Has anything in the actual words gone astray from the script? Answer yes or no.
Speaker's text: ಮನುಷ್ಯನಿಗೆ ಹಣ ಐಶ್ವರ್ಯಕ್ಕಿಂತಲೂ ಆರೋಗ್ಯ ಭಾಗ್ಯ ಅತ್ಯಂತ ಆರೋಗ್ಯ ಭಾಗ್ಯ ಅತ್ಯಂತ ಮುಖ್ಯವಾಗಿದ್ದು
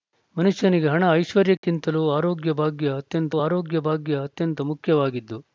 no